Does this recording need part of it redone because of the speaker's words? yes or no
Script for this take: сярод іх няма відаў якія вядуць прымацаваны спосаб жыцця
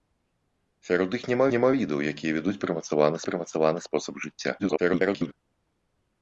yes